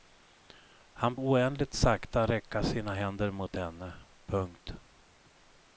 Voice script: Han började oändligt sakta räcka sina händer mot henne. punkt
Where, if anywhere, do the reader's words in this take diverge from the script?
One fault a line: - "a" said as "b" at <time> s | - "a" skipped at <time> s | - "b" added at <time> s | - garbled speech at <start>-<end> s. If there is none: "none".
- "började" skipped at 1.1 s